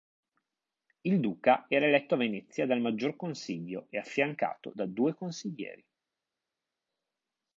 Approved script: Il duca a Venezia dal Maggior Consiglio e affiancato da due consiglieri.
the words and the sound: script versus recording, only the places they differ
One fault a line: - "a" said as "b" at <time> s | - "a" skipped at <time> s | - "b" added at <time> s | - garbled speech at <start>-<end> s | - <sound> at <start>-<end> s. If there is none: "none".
- "era eletto" added at 1.7 s